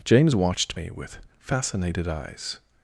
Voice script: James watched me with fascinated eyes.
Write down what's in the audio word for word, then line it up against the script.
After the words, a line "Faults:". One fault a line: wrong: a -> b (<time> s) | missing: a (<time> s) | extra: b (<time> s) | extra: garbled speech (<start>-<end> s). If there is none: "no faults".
James watched me with fascinated eyes.
Faults:
no faults